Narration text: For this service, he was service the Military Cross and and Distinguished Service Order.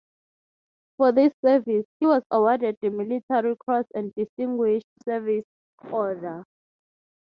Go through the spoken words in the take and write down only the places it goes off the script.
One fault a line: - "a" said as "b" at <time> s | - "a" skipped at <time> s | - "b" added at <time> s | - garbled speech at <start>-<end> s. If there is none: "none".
- "service" said as "awarded" at 2.3 s
- "and" skipped at 4.1 s